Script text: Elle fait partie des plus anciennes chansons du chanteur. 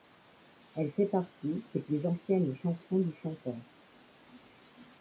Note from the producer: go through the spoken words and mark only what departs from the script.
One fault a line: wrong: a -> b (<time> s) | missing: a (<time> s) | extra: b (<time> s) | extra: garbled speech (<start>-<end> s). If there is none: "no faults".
no faults